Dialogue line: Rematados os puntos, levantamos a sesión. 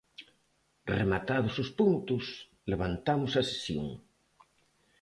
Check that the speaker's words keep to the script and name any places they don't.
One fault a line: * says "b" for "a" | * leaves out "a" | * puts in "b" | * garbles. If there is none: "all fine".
all fine